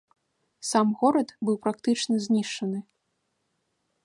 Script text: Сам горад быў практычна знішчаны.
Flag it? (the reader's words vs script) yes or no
no